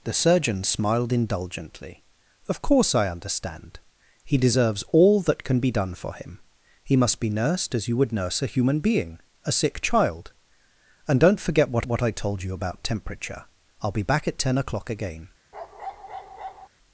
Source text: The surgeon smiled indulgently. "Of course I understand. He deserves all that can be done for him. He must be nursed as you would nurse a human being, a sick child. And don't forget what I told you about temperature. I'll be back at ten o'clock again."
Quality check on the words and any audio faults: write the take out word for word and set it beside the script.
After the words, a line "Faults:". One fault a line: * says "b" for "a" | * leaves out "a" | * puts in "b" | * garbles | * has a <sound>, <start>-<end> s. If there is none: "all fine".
The surgeon smiled indulgently. "Of course I understand. He deserves all that can be done for him. He must be nursed as you would nurse a human being, a sick child. And don't forget what what I told you about temperature. I'll be back at ten o'clock again."
Faults:
* puts in "what"
* has a bark, 15.5-16.7 s